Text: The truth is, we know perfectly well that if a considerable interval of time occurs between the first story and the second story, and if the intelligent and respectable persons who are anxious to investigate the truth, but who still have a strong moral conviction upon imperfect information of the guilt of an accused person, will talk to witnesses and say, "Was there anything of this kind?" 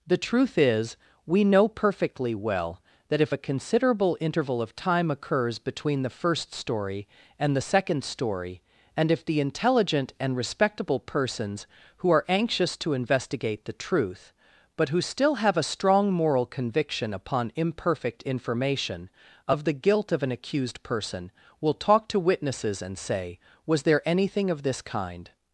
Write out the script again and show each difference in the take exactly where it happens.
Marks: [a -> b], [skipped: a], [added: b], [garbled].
The truth is, we know perfectly well that if a considerable interval of time occurs between the first story and the second story, and if the intelligent and respectable persons who are anxious to investigate the truth, but who still have a strong moral conviction upon imperfect information of the guilt of an accused person, will talk to witnesses and say, "Was there anything of this kind?"